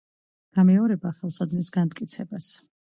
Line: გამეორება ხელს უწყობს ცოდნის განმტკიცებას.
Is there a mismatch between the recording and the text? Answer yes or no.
yes